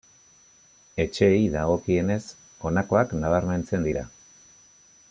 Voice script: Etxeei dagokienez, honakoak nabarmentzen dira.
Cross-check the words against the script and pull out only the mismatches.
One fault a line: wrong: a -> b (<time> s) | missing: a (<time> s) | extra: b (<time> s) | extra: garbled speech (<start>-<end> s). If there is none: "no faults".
no faults